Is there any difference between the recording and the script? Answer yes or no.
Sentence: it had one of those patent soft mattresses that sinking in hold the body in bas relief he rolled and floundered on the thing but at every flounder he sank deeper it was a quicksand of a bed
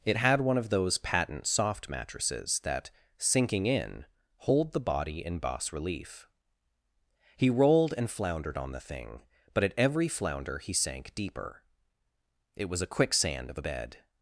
no